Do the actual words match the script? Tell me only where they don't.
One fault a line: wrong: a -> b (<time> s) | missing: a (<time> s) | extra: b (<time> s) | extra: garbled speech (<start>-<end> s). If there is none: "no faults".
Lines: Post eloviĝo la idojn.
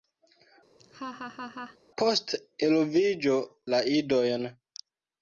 no faults